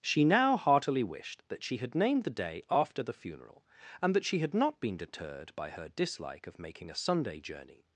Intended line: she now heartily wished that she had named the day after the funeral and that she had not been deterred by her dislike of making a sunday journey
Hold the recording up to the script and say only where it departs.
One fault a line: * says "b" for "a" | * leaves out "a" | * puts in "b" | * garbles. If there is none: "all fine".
all fine